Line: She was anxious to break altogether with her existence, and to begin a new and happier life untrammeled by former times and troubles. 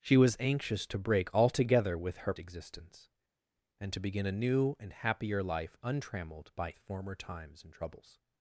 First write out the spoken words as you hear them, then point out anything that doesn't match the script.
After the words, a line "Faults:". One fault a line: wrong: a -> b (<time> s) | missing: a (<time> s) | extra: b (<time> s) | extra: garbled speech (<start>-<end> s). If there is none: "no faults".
She was anxious to break altogether with her existence, and to begin a new and happier life untrammeled by former times and troubles.
Faults:
no faults